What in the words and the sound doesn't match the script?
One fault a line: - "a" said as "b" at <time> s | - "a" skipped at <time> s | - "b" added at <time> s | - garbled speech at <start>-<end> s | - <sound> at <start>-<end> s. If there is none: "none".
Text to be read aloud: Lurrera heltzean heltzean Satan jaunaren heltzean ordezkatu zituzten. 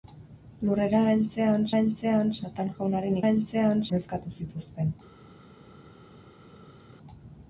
none